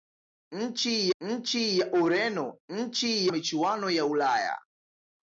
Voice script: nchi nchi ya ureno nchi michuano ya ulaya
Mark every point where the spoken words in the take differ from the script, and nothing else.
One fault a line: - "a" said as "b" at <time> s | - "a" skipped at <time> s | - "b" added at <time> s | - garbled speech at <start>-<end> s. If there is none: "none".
none